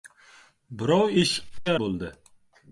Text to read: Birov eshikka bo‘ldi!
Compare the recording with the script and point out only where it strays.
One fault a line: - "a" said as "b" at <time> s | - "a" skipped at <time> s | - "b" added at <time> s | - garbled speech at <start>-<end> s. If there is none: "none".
none